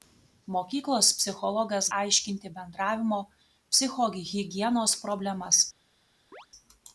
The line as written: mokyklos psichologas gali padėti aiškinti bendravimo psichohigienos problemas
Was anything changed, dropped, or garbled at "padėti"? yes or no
yes